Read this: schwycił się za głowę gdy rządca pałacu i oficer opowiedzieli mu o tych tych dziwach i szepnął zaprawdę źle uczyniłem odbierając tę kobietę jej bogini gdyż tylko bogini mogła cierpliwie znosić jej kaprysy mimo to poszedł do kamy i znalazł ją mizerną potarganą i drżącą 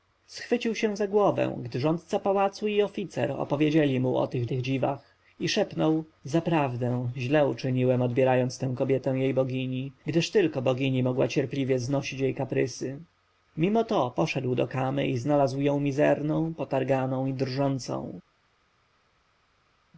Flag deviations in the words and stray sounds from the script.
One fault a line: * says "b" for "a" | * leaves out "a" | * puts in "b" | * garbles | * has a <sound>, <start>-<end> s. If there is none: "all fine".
all fine